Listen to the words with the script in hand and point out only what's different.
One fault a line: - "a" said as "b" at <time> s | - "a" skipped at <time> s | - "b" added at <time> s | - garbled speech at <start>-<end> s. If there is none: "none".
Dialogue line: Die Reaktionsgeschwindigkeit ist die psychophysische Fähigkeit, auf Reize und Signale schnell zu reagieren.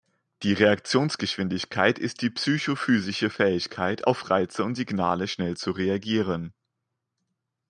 none